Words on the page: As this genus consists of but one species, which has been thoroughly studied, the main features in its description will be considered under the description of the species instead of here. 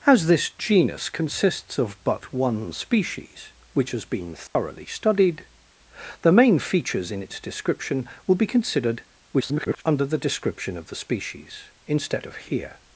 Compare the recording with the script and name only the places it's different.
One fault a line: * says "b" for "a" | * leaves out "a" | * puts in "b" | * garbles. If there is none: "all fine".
* garbles